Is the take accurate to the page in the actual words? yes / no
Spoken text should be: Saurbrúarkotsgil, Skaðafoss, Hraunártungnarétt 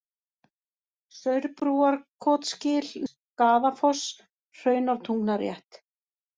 yes